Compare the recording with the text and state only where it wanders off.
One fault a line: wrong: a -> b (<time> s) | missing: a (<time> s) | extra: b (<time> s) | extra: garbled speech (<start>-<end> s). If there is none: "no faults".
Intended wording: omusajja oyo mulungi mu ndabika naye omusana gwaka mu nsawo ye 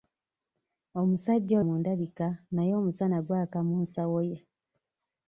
missing: oyo mulungi (1.6 s)